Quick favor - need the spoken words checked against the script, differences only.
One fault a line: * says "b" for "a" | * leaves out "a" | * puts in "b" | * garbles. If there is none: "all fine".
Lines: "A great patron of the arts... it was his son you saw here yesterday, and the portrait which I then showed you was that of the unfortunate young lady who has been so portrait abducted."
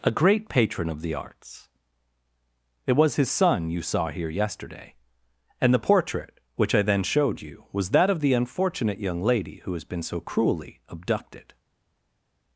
* says "cruelly" for "portrait"